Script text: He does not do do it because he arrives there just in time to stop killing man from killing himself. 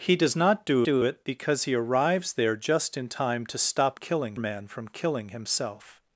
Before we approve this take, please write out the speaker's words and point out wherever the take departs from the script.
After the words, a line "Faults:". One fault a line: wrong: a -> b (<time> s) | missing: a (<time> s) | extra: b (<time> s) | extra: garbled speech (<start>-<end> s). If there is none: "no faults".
He does not do do it because he arrives there just in time to stop killing man from killing himself.
Faults:
no faults